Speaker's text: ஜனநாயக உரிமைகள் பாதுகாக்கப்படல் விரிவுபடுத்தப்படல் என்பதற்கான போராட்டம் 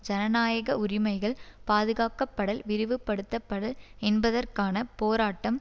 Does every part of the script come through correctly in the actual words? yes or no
yes